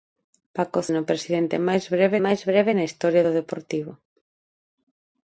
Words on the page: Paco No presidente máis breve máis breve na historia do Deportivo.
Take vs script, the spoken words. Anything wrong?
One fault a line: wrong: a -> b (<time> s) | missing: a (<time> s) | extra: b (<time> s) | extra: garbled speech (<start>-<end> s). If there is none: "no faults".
no faults